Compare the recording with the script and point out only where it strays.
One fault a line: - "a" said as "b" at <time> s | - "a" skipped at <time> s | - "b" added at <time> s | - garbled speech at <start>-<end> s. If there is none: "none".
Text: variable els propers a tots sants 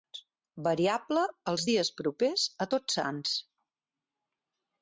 - "dies" added at 1.7 s